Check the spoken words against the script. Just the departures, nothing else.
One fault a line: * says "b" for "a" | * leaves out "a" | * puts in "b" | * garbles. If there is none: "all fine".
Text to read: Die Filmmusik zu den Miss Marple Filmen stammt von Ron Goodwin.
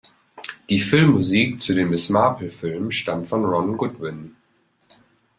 all fine